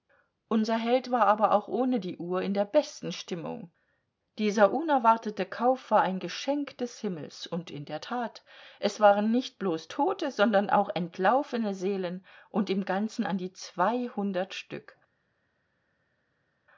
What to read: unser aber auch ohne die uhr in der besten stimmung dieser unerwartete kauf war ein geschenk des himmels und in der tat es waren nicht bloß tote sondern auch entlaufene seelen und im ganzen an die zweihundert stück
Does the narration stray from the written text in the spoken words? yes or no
yes